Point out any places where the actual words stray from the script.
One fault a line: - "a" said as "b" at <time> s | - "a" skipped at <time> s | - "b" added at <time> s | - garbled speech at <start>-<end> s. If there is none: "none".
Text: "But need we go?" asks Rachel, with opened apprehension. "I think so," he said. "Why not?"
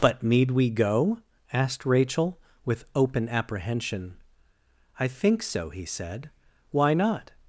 - "asks" said as "asked" at 1.5 s
- "opened" said as "open" at 3.0 s